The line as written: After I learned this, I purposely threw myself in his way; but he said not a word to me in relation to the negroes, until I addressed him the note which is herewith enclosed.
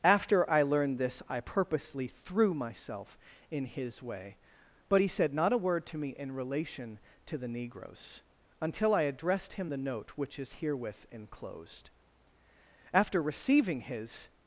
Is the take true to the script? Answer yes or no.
no